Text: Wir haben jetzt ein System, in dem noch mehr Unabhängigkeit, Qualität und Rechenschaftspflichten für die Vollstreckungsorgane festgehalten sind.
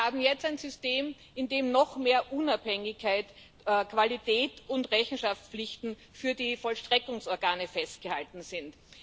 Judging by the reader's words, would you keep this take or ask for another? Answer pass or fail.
pass